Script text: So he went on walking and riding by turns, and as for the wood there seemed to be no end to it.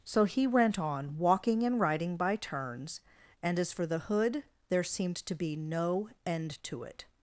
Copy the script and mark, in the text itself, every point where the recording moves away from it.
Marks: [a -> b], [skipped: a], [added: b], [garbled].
So he went on walking and riding by turns, and as for the [wood -> hood] there seemed to be no end to it.